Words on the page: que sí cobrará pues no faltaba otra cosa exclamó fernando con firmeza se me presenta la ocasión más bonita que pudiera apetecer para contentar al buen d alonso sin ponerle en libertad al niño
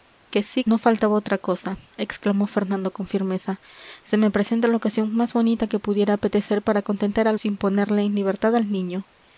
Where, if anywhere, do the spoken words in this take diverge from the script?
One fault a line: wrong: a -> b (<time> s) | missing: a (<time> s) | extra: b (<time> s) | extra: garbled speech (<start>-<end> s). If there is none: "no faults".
missing: cobrará pues (0.7 s)
missing: buen d alonso (7.4 s)